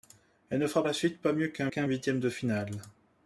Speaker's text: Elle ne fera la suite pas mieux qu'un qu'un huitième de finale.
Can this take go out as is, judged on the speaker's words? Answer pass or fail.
pass